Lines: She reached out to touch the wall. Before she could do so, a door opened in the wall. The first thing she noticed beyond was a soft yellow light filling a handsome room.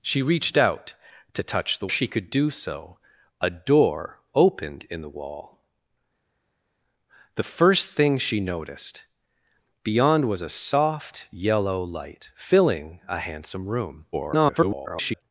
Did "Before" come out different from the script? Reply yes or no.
yes